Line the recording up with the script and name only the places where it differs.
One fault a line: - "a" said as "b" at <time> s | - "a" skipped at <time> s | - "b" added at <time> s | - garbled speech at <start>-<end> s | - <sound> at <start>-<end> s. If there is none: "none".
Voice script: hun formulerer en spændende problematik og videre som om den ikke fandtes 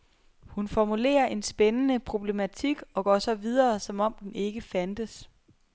- "går så" added at 3.0 s